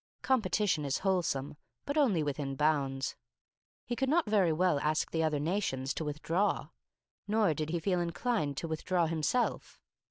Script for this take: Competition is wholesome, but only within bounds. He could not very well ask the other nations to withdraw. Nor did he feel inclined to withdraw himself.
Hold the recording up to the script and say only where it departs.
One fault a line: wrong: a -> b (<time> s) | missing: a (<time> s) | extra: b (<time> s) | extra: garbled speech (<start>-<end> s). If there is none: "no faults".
no faults